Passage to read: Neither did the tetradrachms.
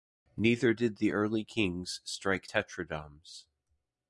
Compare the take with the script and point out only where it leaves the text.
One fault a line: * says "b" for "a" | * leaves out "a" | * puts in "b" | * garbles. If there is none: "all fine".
* puts in "early kings strike"